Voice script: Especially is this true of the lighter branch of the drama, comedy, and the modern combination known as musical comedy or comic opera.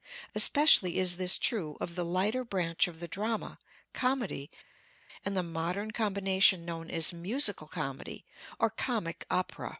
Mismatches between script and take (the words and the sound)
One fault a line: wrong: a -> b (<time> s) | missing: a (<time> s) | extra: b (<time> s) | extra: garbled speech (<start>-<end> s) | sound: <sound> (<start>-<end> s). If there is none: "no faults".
no faults